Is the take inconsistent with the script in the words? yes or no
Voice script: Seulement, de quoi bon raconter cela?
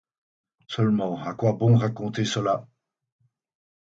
yes